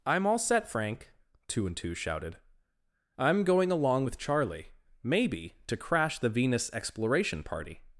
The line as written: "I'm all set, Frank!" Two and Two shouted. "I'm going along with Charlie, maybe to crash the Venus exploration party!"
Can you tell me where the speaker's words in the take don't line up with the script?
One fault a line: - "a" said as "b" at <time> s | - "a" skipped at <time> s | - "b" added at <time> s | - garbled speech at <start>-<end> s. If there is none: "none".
none